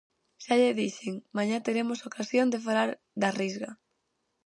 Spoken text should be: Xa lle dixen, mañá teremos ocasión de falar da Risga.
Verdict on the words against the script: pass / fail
pass